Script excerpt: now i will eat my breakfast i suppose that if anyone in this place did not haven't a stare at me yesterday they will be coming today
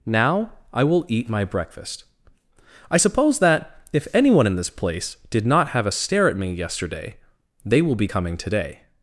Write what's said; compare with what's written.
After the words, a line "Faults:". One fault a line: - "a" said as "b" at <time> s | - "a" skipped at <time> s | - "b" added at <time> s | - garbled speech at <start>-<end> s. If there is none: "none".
now i will eat my breakfast i suppose that if anyone in this place did not have a stare at me yesterday they will be coming today
Faults:
- "haven't" said as "have" at 5.7 s